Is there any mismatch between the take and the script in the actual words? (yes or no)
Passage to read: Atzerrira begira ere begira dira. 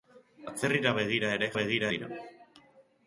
no